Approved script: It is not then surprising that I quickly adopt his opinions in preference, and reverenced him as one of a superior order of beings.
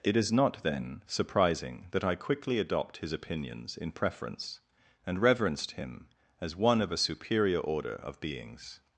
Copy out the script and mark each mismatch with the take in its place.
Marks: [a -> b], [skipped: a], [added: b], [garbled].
It is not then surprising that I quickly adopt his opinions in preference, and reverenced him as one of a superior order of beings.